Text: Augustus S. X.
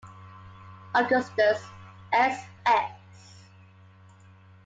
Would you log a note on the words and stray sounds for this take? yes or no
no